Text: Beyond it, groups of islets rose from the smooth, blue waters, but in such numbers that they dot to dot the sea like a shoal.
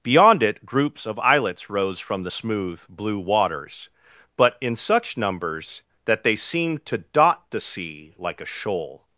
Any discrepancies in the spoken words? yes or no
yes